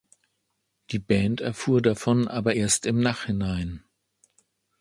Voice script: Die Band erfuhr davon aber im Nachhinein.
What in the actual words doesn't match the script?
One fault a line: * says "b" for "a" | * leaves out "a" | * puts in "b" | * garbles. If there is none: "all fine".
* puts in "erst"